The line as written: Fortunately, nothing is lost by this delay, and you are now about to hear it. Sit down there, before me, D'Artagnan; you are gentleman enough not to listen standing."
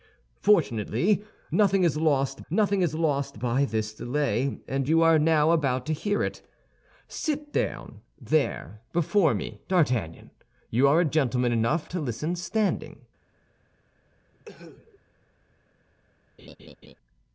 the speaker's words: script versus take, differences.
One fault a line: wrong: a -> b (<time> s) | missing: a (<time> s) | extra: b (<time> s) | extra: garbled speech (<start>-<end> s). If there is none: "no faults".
extra: nothing is lost (2.5 s)
missing: not (11.9 s)